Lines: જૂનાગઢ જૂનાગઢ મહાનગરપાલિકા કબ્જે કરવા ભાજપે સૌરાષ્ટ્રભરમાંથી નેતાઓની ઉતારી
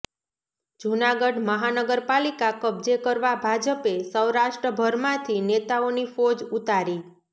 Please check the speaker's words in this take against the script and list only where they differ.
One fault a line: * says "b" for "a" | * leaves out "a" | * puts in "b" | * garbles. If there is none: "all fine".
* leaves out "જૂનાગઢ"
* puts in "ફોજ"